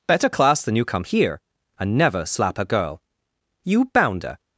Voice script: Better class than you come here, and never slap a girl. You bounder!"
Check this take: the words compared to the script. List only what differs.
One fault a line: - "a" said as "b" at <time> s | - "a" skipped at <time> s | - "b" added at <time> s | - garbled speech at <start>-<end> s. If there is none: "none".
none